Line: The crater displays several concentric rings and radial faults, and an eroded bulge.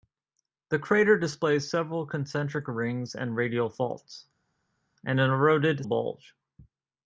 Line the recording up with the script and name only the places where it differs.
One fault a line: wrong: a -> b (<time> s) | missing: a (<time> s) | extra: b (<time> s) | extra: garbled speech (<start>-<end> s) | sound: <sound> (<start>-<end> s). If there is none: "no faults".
no faults